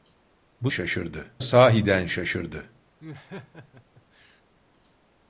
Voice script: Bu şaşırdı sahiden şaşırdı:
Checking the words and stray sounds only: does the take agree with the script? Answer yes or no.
no